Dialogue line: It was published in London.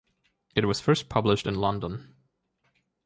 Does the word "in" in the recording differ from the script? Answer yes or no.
no